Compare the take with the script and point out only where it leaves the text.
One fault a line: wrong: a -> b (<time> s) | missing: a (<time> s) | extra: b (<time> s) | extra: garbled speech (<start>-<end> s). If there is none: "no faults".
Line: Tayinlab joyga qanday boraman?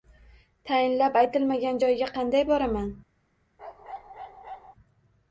extra: aytilmagan (1.2 s)